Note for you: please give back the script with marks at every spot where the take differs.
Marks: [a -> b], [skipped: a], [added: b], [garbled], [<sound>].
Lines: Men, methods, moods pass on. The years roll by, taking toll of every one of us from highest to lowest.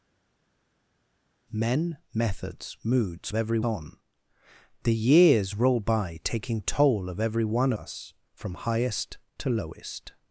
Men, methods, moods [pass -> every] on. The years roll by, taking toll of every one [skipped: of] us from highest to lowest.